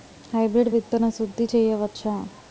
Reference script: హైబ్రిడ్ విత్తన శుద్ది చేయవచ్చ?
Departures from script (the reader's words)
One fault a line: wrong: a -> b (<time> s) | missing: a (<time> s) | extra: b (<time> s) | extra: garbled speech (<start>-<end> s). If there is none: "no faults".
no faults